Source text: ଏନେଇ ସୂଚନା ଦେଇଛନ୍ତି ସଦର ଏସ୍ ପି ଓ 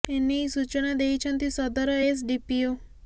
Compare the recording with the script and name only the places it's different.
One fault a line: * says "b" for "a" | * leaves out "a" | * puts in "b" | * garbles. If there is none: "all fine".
* puts in "ଡି"